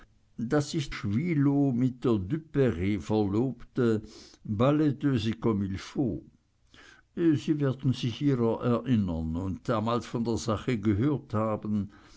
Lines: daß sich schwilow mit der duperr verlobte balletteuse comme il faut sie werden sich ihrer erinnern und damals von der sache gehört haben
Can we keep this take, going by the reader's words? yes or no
yes